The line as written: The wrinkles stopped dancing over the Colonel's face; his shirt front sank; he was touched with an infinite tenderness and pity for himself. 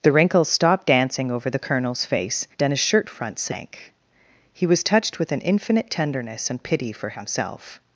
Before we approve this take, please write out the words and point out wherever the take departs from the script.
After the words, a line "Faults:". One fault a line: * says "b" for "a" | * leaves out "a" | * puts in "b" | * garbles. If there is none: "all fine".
The wrinkles stopped dancing over the Colonel's face; then his shirt front sank; he was touched with an infinite tenderness and pity for himself.
Faults:
* puts in "then"